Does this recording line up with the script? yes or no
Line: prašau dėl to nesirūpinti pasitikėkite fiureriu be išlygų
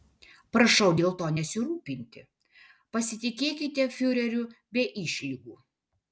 yes